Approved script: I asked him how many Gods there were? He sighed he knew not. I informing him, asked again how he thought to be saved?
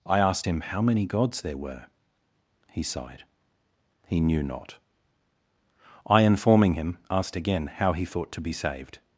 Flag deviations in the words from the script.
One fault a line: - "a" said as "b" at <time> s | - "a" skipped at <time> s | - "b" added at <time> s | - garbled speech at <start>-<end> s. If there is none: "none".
none